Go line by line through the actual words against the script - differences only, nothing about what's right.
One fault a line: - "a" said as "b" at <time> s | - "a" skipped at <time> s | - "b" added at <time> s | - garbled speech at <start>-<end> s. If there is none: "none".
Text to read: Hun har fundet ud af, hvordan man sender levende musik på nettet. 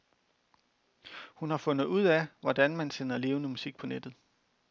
none